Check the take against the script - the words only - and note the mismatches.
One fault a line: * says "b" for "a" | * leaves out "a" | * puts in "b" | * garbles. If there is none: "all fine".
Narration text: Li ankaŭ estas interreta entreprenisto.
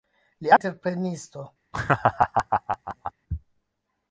* leaves out "ankaŭ estas interreta"